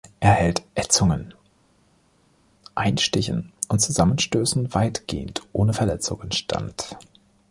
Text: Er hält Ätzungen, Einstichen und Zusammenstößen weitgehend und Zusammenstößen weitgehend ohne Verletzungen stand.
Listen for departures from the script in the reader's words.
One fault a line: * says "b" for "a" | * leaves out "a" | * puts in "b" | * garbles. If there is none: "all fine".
* leaves out "und Zusammenstößen weitgehend"